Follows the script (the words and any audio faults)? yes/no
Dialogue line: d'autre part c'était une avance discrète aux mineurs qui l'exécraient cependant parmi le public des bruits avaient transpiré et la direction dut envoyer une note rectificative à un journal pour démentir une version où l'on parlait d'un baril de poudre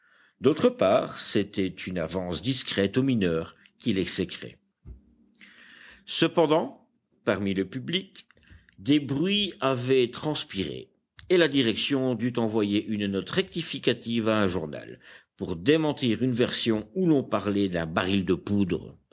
yes